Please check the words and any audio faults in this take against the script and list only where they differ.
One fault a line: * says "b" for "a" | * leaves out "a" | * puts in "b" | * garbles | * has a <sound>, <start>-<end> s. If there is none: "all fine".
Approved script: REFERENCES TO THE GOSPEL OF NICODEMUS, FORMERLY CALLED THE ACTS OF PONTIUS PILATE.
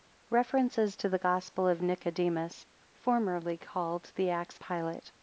* leaves out "OF PONTIUS"